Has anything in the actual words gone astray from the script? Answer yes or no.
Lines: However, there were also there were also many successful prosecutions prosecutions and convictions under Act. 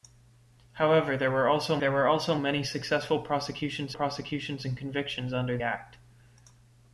no